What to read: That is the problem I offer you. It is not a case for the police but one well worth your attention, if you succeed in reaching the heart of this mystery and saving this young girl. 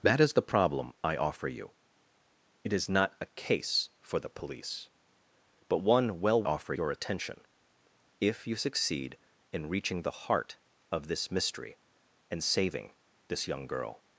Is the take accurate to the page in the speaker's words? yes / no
no